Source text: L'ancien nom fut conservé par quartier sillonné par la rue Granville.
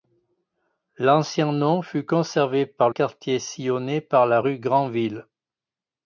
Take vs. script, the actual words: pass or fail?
pass